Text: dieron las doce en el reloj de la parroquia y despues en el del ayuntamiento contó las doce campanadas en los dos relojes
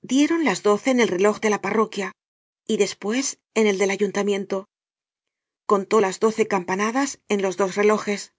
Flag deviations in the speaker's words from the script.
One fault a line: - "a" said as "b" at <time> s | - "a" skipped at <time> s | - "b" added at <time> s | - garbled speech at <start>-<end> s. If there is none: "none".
none